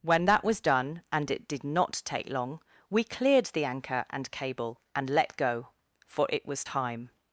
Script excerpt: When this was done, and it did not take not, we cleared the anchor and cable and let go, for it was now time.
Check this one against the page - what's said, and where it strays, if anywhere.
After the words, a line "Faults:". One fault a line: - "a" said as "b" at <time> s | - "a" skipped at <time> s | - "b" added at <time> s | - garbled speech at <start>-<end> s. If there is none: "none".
When that was done, and it did not take long, we cleared the anchor and cable and let go, for it was time.
Faults:
- "this" said as "that" at 0.2 s
- "not" said as "long" at 2.3 s
- "now" skipped at 6.6 s